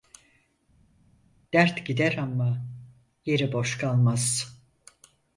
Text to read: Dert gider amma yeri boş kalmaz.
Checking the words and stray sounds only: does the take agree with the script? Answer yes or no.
yes